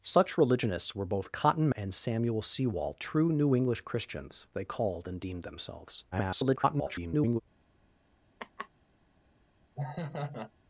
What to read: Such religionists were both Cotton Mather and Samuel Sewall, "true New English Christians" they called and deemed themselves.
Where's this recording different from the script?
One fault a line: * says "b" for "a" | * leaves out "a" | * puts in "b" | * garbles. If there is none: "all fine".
* leaves out "Mather"
* garbles